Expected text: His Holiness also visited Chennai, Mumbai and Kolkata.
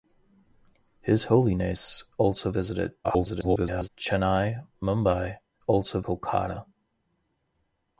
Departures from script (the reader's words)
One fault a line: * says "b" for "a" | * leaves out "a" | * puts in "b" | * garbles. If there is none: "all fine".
* garbles
* says "also" for "and"